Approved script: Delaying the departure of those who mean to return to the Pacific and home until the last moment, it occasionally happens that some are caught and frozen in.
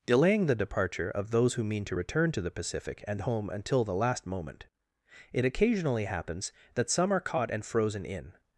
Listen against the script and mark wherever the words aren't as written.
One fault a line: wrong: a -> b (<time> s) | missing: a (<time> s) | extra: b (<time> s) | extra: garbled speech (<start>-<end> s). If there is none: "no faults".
no faults